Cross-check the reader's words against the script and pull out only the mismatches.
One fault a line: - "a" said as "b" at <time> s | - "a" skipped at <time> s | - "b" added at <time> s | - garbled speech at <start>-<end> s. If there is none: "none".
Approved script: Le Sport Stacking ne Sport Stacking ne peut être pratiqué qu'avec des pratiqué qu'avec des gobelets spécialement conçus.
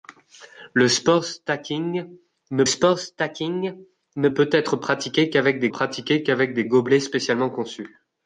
none